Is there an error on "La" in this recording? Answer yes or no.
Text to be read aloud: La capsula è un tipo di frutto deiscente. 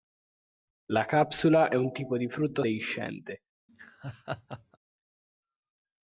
no